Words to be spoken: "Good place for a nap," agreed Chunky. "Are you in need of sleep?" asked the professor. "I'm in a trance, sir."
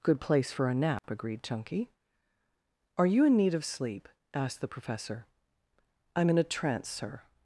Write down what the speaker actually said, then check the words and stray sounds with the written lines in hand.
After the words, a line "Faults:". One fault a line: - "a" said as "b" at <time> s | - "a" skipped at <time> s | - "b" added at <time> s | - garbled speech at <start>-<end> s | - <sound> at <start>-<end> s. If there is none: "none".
"Good place for a nap," agreed Chunky. "Are you in need of sleep?" asked the professor. "I'm in a trance, sir."
Faults:
- dropout at 1.0-1.0 s